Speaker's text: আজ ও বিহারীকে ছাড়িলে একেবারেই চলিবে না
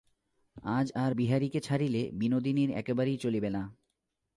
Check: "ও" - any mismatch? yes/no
yes